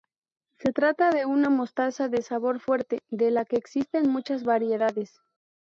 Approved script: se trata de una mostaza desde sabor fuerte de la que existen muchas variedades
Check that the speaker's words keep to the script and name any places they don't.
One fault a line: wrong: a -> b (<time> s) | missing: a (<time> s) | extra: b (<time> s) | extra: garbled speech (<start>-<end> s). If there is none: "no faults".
wrong: desde -> de (2.1 s)